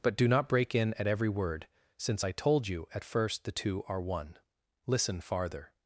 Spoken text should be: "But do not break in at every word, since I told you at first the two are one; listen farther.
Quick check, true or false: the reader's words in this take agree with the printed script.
true